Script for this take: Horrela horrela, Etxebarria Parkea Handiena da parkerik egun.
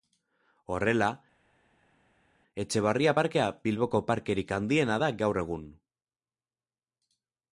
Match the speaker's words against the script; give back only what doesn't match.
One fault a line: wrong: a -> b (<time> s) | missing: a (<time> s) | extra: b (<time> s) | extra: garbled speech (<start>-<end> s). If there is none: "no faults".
missing: horrela (1.1 s)
extra: Bilboko parkerik (3.7 s)
wrong: parkerik -> gaur (5.2 s)